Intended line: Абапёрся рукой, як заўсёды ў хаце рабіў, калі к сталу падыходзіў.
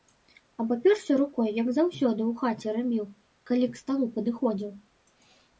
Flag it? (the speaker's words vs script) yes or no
no